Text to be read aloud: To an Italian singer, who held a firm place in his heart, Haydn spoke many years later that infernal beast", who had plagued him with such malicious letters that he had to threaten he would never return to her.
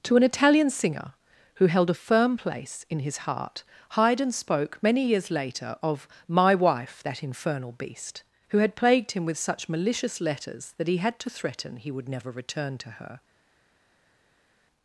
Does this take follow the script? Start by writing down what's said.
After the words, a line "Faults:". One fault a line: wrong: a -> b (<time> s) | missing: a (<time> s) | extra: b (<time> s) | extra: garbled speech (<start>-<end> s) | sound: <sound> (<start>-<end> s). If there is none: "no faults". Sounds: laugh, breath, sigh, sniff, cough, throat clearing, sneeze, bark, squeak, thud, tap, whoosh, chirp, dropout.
To an Italian singer, who held a firm place in his heart, Haydn spoke many years later of "my wife, that infernal beast", who had plagued him with such malicious letters that he had to threaten he would never return to her.
Faults:
extra: of my wife (5.8 s)